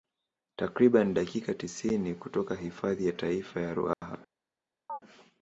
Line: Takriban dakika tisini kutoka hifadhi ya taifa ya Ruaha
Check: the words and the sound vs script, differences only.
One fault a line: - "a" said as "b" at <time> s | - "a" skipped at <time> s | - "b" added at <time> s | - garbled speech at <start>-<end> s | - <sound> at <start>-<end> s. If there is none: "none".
- dropout at 3.9-4.0 s
- chirp at 4.9-5.0 s